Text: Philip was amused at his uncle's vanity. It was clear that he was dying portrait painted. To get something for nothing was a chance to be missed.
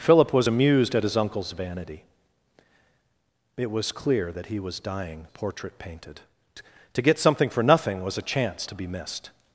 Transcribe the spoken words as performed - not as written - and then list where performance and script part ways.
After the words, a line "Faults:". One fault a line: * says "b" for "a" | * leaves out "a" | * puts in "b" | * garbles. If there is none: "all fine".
Philip was amused at his uncle's vanity. It was clear that he was dying portrait painted. To get something for nothing was a chance to be missed.
Faults:
all fine